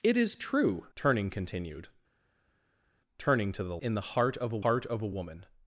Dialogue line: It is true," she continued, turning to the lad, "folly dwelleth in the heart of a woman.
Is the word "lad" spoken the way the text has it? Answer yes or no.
no